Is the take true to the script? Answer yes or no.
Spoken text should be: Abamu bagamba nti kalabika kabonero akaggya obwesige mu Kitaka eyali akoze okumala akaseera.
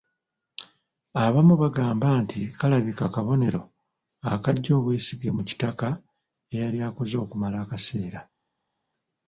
yes